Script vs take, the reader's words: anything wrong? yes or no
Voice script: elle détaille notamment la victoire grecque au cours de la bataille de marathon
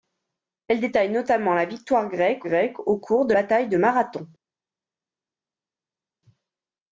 yes